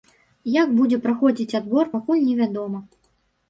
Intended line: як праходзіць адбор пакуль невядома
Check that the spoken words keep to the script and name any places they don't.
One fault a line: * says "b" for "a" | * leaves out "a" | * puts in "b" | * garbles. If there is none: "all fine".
* puts in "будзе"